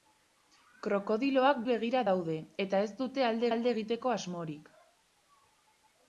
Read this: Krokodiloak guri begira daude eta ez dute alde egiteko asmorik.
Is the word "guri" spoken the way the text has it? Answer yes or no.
no